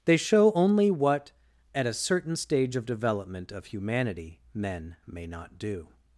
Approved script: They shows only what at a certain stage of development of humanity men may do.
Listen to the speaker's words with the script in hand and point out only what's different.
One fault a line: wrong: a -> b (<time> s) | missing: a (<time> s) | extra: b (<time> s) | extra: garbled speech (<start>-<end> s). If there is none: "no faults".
wrong: shows -> show (0.2 s)
extra: not (5.3 s)